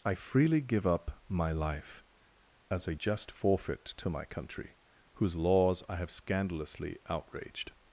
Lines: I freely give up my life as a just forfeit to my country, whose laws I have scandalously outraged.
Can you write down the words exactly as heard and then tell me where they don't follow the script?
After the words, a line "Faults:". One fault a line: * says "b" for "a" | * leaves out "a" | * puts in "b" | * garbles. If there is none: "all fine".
I freely give up my life as a just forfeit to my country, whose laws I have scandalously outraged.
Faults:
all fine